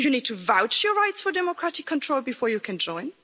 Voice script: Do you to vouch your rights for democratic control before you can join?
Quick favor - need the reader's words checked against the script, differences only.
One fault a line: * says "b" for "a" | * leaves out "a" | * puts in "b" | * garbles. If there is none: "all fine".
* puts in "need"